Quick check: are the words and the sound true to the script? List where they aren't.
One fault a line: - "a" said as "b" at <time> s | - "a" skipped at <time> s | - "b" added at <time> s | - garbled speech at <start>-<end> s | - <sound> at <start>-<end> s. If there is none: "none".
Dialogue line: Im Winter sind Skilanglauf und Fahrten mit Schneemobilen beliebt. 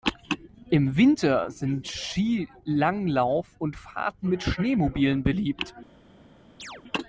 - chirp at 6.6-6.8 s